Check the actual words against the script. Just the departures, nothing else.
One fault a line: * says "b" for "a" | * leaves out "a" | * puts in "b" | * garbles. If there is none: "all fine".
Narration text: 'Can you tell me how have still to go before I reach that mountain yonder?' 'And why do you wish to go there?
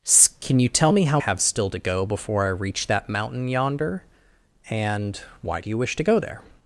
all fine